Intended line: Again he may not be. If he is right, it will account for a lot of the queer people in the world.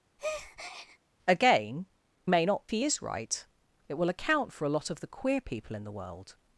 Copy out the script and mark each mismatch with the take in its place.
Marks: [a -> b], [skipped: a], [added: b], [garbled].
Again [skipped: he] may not [skipped: be. If] he is right, it will account for a lot of the queer people in the world.